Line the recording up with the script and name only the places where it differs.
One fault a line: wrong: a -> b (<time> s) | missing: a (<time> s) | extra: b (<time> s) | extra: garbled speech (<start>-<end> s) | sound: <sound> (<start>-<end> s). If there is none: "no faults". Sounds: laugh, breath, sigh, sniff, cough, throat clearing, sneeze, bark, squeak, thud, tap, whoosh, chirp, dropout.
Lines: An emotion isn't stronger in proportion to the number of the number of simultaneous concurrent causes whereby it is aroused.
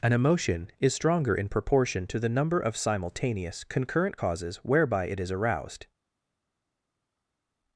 wrong: isn't -> is (0.8 s)
missing: the number of (2.8 s)